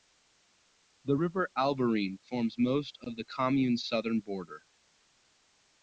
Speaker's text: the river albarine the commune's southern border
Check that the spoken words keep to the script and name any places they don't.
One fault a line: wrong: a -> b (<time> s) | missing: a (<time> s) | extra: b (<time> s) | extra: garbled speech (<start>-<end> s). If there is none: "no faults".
extra: forms most of (2.2 s)